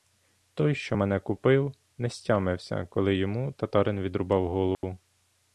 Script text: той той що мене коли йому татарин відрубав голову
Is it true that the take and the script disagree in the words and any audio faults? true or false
true